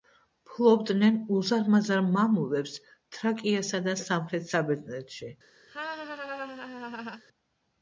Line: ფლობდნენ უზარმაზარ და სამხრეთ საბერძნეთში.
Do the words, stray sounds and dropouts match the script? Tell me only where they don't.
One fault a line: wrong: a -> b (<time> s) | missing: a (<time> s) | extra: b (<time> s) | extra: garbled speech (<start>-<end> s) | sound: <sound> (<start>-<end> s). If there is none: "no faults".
extra: მამულებს თრაკიასა (2.1 s)
sound: laugh (5.7-7.2 s)